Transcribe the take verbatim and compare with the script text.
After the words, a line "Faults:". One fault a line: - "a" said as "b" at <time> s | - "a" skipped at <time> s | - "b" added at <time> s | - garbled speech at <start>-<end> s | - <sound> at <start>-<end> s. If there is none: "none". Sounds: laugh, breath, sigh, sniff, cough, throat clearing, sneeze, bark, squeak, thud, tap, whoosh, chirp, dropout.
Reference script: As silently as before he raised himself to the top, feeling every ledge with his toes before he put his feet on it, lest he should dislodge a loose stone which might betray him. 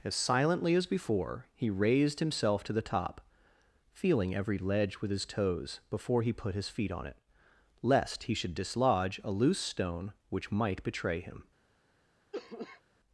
As silently as before he raised himself to the top, feeling every ledge with his toes before he put his feet on it, lest he should dislodge a loose stone which might betray him.
Faults:
- cough at 12.3-12.8 s